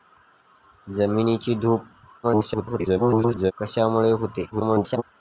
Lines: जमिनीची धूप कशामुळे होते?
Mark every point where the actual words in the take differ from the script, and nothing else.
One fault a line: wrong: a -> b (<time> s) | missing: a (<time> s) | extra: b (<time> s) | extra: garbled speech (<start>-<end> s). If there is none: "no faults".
extra: garbled speech (2.2-3.5 s)
extra: garbled speech (4.5-5.0 s)